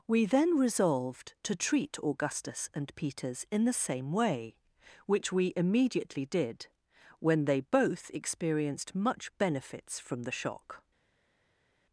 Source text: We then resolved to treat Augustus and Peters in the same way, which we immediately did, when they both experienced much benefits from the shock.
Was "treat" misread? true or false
false